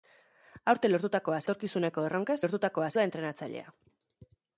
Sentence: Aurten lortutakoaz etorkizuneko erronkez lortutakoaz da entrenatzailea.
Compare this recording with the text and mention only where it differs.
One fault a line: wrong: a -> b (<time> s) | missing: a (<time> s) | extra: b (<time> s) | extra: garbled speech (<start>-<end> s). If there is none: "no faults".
no faults